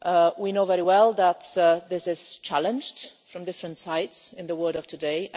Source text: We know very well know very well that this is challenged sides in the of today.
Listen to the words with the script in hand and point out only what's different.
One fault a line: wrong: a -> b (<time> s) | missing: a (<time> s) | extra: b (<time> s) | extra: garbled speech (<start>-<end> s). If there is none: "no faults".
missing: know very well (1.1 s)
extra: from different (3.3 s)
extra: world (4.6 s)